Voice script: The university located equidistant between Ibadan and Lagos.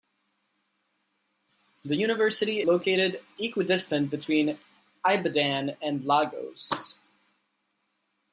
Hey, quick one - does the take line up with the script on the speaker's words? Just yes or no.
yes